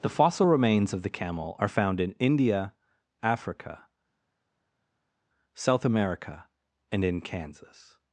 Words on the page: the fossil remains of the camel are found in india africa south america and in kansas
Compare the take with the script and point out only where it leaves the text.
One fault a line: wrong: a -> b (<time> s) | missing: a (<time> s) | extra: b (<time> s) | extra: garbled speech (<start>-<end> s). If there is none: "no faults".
no faults